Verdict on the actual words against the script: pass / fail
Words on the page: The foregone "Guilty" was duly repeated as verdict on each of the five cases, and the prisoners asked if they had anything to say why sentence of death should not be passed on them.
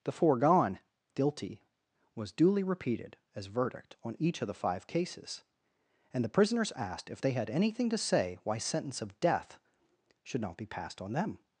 pass